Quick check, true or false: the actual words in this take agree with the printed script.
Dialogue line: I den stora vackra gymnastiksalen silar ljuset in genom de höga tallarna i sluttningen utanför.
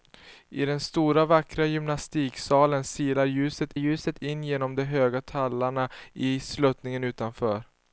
false